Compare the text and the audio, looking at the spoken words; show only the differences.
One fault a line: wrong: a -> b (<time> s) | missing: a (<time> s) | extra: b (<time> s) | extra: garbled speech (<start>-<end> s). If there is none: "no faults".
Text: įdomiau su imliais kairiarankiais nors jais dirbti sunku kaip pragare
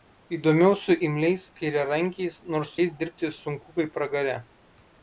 no faults